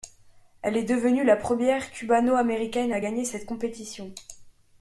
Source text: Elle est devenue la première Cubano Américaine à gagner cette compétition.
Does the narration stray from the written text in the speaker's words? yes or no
no